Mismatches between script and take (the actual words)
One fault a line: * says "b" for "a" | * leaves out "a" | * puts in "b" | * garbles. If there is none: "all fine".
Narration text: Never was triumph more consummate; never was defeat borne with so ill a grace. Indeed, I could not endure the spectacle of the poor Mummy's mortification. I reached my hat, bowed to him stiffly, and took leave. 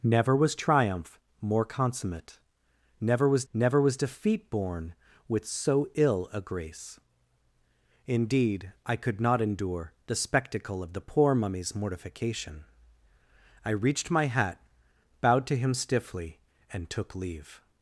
* puts in "never was"